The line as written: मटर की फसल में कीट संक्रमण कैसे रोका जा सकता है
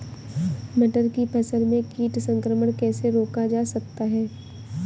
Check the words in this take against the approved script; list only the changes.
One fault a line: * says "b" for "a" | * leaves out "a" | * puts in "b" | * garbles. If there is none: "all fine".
all fine